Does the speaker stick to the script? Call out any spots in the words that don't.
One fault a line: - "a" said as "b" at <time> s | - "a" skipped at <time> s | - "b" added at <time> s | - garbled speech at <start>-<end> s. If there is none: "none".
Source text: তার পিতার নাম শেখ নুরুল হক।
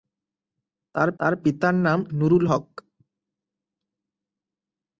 - "তার" added at 1.2 s
- "শেখ" skipped at 2.0 s